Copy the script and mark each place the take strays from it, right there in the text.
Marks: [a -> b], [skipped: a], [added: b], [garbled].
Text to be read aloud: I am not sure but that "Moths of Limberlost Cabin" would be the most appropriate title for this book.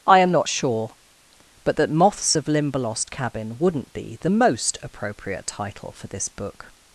I am not sure but that "Moths of Limberlost Cabin" [would -> wouldn't] be the most appropriate title for this book.